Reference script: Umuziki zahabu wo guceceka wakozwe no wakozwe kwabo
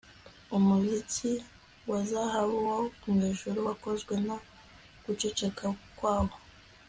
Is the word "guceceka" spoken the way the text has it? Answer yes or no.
no